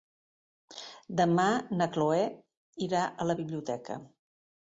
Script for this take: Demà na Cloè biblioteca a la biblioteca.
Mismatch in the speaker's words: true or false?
true